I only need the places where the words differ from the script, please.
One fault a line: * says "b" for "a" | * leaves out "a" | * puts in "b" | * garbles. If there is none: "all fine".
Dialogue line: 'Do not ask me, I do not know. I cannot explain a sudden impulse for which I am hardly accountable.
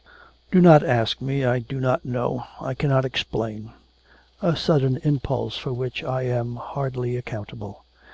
all fine